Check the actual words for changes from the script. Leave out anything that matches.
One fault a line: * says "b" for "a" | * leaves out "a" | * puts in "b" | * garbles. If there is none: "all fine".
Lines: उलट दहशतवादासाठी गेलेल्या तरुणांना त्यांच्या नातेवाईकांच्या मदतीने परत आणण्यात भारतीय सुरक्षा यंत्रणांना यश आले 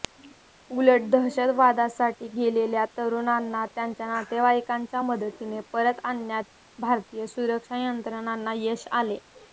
all fine